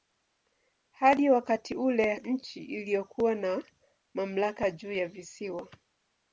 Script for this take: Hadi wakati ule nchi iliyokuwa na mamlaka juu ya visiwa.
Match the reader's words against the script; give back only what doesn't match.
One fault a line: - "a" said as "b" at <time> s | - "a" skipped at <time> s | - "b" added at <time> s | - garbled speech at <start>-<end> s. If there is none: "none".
none